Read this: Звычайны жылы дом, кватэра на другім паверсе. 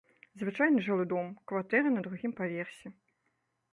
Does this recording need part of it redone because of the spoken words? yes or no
no